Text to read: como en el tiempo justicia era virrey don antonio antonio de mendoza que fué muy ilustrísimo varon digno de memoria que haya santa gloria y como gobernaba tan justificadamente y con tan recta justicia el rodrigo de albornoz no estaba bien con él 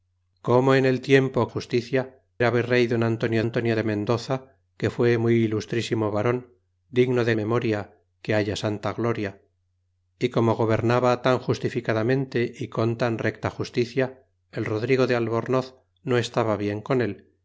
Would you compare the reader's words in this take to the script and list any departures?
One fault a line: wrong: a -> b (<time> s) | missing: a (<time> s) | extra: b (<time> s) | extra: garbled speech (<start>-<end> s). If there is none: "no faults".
no faults